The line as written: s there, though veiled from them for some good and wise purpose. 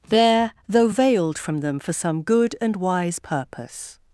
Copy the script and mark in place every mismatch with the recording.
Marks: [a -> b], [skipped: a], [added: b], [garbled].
[skipped: s] there, though veiled from them for some good and wise purpose.